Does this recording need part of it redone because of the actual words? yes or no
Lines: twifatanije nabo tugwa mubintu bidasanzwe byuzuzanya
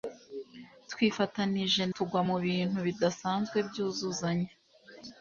yes